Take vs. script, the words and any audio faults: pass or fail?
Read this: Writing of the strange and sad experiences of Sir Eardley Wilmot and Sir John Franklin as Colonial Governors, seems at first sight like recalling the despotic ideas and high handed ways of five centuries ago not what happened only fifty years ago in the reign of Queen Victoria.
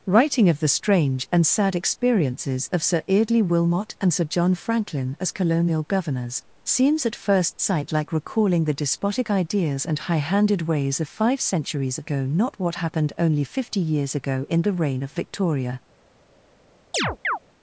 fail